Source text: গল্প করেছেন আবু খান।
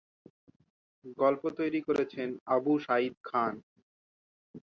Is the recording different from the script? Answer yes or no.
yes